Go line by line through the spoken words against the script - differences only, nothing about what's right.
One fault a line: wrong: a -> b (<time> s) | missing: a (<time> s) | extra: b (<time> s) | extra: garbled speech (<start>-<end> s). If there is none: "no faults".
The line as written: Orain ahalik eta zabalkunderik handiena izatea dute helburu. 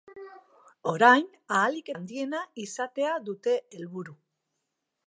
missing: eta zabalkunderik (1.9 s)